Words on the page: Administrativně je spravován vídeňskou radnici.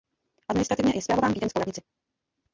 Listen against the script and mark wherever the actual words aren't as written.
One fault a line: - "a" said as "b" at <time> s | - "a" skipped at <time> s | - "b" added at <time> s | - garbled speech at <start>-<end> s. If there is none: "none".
none